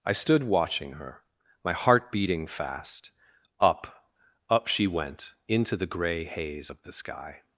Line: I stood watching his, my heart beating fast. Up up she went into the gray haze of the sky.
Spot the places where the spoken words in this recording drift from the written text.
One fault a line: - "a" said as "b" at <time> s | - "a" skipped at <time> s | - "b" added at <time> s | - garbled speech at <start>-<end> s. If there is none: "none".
- "his" said as "her" at 0.9 s